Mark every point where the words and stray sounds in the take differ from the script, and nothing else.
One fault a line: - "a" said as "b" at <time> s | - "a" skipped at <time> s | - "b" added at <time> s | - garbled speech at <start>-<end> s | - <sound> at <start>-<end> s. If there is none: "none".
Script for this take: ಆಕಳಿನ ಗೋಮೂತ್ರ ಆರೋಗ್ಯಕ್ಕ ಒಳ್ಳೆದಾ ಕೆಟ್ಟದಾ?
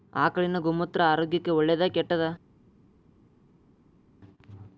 none